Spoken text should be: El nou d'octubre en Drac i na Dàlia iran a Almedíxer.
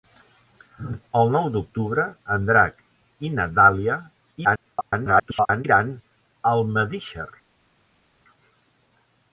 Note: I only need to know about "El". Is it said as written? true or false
true